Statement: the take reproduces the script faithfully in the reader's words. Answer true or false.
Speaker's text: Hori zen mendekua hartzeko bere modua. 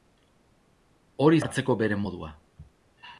false